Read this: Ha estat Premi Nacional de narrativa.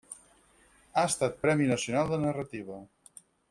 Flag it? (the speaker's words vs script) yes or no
no